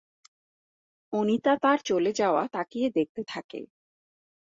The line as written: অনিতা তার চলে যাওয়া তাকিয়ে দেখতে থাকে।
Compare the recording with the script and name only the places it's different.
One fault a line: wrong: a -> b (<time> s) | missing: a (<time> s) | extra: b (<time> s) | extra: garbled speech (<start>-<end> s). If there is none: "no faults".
no faults